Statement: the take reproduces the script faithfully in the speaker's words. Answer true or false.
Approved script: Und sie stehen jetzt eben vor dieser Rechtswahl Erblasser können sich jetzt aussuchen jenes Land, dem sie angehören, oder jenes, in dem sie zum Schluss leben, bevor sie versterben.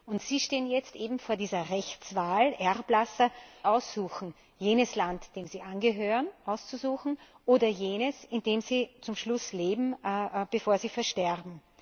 false